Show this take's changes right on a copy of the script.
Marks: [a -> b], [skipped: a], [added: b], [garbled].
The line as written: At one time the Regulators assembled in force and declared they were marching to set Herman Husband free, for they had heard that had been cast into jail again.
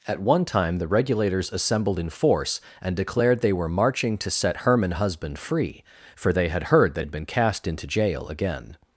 At one time the Regulators assembled in force and declared they were marching to set Herman Husband free, for they had heard that had been cast into jail again.